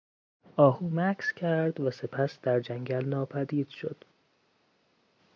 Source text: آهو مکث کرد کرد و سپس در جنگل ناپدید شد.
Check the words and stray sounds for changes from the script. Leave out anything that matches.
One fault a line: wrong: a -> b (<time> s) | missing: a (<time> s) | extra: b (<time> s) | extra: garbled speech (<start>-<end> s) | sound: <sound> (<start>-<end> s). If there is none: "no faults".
missing: کرد (1.8 s)